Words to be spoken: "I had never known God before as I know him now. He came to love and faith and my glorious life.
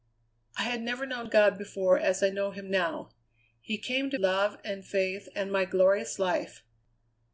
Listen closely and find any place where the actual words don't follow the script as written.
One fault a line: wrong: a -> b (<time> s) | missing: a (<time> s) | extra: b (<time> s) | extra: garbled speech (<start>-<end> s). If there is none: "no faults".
no faults